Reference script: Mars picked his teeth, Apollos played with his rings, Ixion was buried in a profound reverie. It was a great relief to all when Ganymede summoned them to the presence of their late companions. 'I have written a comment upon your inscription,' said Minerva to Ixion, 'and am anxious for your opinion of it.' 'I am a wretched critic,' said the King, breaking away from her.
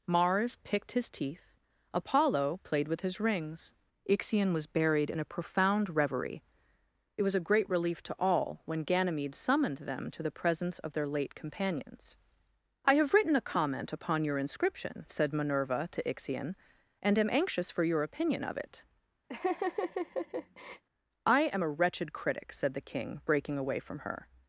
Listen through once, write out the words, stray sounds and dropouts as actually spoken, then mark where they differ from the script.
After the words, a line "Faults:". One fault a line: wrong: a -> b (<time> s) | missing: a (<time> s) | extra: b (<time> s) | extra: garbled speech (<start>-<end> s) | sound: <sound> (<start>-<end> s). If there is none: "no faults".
Mars picked his teeth, Apollo played with his rings, Ixion was buried in a profound reverie. It was a great relief to all when Ganymede summoned them to the presence of their late companions. 'I have written a comment upon your inscription,' said Minerva to Ixion, 'and am anxious for your opinion of it.' 'I am a wretched critic,' said the King, breaking away from her.
Faults:
wrong: Apollos -> Apollo (1.9 s)
sound: laugh (19.3-20.8 s)